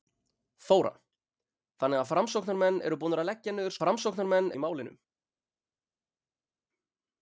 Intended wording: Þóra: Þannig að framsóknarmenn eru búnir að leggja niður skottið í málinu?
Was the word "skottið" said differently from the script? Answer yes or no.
yes